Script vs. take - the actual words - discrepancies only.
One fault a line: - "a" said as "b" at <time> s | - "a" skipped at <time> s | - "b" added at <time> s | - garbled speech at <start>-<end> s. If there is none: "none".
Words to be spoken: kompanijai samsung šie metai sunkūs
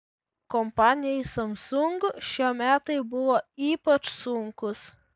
- "buvo ypač" added at 3.1 s